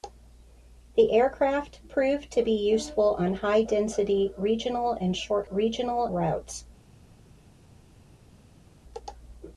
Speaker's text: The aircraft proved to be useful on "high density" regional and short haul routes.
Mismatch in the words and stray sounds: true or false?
true